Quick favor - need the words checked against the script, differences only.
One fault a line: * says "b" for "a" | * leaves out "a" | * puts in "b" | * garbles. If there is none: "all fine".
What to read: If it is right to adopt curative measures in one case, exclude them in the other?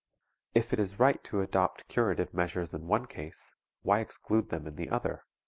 * puts in "why"